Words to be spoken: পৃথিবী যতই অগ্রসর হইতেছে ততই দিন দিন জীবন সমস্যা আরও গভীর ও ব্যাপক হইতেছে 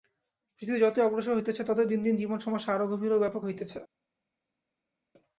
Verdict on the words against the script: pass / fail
pass